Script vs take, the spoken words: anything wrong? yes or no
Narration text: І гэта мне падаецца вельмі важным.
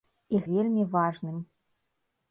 yes